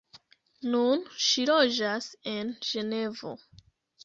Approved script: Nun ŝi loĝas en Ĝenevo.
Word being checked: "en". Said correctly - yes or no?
yes